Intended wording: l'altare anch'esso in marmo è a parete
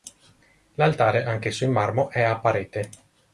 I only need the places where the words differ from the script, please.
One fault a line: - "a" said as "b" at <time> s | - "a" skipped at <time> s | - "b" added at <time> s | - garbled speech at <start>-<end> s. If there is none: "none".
none